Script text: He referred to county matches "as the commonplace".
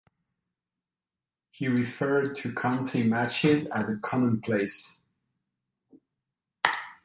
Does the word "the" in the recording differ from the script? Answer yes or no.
yes